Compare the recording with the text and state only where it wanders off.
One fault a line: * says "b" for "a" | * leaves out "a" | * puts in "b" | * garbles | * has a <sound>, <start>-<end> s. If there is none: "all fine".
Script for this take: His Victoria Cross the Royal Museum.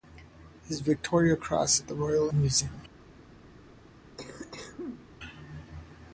* has a cough, 4.2-5.1 s